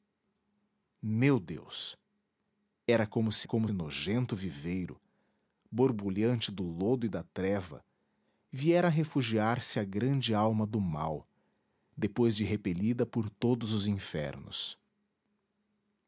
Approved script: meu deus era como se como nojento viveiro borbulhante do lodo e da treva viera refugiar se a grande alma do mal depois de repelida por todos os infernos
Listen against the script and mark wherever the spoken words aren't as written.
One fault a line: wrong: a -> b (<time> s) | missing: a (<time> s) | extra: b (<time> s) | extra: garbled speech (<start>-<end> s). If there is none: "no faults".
no faults